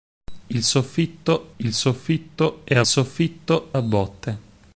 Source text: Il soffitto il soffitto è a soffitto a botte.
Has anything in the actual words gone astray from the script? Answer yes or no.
no